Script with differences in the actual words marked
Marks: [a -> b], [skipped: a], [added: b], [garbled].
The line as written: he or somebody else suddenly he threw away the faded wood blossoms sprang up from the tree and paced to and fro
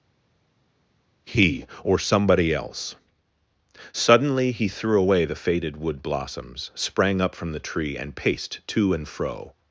he or somebody else suddenly he threw away the faded wood blossoms sprang up from the tree and paced to and fro